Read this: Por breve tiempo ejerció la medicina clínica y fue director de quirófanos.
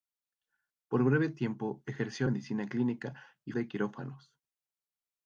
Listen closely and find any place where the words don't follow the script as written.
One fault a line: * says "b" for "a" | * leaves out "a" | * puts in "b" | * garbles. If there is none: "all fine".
* leaves out "la"
* leaves out "fue director"